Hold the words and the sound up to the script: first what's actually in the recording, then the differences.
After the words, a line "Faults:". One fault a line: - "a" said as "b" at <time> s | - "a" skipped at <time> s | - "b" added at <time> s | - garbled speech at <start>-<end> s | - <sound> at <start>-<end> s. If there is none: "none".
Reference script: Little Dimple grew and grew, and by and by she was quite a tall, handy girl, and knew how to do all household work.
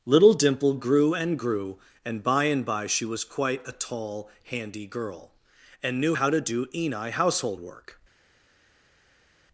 Little Dimple grew and grew, and by and by she was quite a tall, handy girl, and knew how to do eni household work.
Faults:
- "all" said as "eni" at 6.7 s